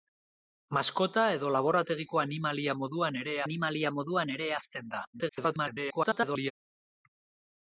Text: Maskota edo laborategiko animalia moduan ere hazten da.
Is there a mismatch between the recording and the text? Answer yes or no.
yes